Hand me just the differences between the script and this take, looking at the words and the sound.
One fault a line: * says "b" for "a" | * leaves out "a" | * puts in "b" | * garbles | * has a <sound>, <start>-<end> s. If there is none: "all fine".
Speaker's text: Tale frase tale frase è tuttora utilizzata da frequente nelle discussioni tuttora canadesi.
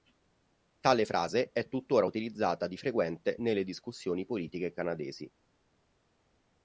* leaves out "tale frase"
* says "di" for "da"
* says "politiche" for "tuttora"